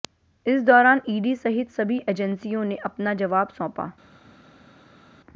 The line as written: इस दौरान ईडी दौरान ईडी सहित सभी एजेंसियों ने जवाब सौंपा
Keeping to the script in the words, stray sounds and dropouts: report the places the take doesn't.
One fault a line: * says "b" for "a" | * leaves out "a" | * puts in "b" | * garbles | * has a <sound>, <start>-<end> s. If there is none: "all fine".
* leaves out "दौरान ईडी"
* puts in "अपना"